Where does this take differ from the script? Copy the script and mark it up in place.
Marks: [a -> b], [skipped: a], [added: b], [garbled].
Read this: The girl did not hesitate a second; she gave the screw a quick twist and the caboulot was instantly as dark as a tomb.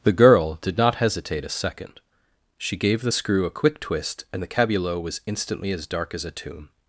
The girl did not hesitate a second; she gave the screw a quick twist and the caboulot was instantly as dark as a tomb.